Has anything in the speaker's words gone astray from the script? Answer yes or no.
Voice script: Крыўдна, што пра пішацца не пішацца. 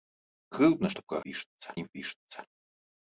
no